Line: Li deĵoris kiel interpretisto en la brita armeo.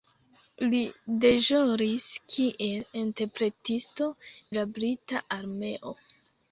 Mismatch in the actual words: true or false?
true